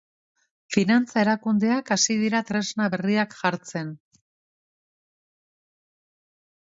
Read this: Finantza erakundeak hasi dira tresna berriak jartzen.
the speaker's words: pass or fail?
pass